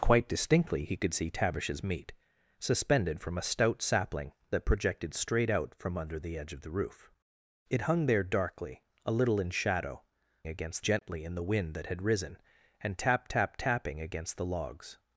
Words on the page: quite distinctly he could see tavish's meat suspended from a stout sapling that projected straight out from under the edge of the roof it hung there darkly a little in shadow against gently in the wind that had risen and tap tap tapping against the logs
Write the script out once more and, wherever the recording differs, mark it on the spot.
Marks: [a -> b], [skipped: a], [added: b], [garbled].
quite distinctly he could see tavish's meat suspended from a stout sapling that projected straight out from under the edge of the roof it hung there darkly a little in shadow against gently in the wind that had risen and tap tap tapping against the logs